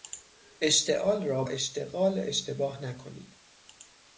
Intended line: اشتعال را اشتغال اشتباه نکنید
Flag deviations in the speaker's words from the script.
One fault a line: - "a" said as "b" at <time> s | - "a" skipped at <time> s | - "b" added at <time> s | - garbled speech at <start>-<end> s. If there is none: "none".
none